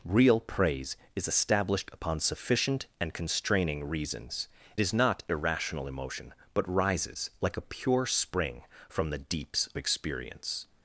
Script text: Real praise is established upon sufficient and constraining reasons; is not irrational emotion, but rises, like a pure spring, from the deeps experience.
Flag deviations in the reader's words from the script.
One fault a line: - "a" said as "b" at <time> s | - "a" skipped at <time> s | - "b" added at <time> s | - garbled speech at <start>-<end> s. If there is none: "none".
none